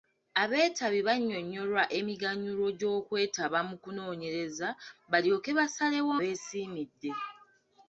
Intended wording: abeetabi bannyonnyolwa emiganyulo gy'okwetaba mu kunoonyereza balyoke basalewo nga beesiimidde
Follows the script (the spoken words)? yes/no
no